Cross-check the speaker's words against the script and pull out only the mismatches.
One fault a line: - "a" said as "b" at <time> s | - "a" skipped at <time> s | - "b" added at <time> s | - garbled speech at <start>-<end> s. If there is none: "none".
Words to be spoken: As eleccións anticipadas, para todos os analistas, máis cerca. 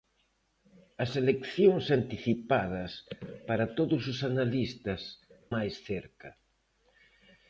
none